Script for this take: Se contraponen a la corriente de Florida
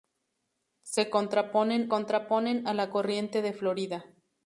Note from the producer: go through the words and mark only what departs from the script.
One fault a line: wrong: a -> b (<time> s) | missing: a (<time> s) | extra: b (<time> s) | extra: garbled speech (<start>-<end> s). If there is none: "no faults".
extra: contraponen (1.9 s)